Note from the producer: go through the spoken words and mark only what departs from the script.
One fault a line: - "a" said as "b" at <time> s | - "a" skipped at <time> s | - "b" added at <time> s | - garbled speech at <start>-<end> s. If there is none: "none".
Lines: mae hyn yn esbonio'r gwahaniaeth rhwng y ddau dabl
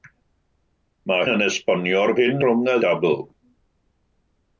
- "hyn" skipped at 1.3 s
- "gwahaniaeth" said as "hyn" at 2.2 s
- "ddau" skipped at 2.8 s